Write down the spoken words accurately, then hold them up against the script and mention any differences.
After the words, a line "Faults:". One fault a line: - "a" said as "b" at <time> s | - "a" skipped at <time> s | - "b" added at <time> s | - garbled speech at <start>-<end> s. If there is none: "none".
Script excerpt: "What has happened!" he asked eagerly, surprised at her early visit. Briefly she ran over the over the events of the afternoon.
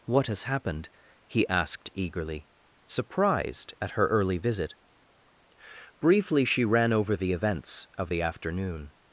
"What has happened!" he asked eagerly, surprised at her early visit. Briefly she ran over the events of the afternoon.
Faults:
- "over the" skipped at 7.3 s